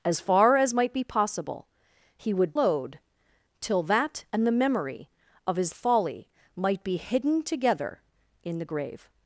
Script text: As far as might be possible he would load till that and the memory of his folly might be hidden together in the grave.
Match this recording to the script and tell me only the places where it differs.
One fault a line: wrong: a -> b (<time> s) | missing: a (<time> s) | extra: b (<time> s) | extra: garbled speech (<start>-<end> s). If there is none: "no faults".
no faults